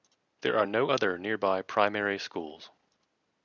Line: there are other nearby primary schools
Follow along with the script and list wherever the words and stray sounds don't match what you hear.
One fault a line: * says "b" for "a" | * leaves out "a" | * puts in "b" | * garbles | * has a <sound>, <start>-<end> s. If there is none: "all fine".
* puts in "no"